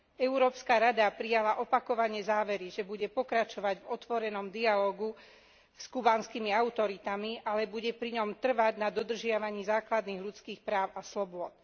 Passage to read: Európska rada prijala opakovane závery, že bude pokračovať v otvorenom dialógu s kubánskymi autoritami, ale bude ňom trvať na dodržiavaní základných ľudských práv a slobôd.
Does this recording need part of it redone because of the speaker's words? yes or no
yes